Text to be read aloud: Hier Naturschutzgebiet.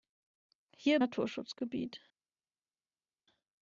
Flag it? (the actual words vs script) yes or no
no